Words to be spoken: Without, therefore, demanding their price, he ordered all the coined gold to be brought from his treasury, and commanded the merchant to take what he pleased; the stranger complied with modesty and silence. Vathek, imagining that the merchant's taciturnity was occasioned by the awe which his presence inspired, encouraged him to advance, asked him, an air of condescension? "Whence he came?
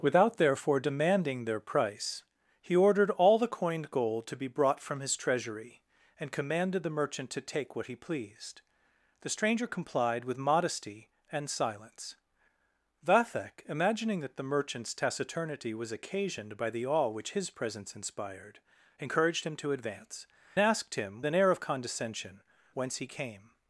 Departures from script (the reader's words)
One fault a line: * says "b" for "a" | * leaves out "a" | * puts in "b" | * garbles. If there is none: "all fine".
all fine